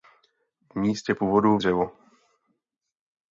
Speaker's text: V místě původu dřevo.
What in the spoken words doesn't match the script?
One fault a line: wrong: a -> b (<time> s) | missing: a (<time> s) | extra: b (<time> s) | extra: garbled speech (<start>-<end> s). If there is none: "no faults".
no faults